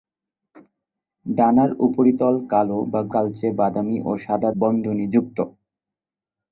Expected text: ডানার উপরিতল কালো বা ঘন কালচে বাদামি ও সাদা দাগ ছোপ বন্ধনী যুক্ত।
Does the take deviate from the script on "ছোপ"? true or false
true